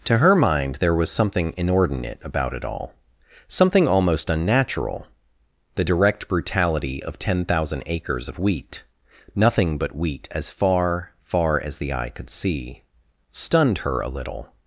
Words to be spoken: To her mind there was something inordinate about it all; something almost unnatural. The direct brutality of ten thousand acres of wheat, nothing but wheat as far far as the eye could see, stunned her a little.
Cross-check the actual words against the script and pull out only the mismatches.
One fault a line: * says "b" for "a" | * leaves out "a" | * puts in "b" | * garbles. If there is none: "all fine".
all fine